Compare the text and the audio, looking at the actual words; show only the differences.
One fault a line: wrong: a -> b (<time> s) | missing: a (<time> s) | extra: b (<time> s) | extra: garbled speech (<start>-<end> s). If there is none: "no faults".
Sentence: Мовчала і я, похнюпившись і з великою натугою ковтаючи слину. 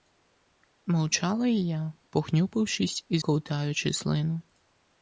missing: з великою натугою (3.2 s)